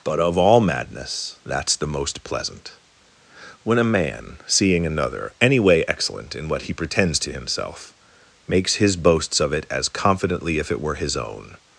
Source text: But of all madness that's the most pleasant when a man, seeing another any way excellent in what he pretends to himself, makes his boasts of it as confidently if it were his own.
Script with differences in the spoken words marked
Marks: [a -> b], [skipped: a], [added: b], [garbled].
But of all madness that's the most pleasant when a man, seeing another any way excellent in what he pretends to himself, makes his boasts of it as confidently if it were his own.